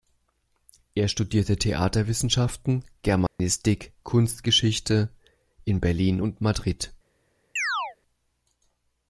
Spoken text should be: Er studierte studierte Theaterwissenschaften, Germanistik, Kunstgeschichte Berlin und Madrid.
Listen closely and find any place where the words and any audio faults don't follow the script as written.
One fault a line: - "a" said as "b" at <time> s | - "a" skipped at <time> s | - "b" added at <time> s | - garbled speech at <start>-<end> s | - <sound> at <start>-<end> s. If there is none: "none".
- "studierte" skipped at 1.6 s
- dropout at 3.3-3.4 s
- "in" added at 5.6 s
- chirp at 7.6-8.0 s